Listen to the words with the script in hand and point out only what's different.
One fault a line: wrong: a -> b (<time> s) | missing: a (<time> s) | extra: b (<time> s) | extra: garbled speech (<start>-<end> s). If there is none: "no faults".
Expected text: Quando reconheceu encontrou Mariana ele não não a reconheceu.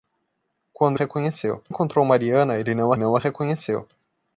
no faults